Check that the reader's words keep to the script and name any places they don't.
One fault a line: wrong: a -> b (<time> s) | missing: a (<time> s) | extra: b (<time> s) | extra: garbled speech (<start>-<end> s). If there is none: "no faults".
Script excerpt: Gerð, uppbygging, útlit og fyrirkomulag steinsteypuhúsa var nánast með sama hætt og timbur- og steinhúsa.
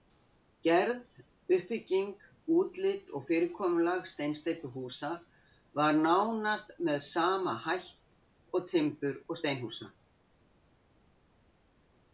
no faults